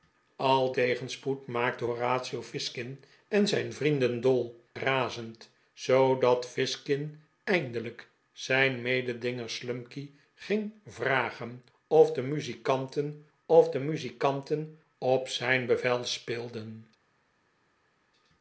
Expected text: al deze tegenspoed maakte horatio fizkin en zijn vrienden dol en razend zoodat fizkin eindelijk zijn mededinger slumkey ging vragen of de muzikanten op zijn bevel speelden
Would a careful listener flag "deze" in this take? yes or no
yes